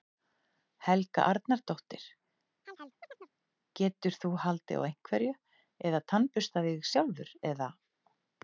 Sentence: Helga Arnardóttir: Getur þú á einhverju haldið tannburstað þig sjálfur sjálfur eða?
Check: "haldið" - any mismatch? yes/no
yes